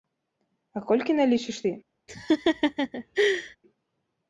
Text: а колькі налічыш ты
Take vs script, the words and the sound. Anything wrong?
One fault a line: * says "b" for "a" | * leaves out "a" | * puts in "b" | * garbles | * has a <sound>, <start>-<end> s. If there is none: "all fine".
* has a laugh, 2.1-3.6 s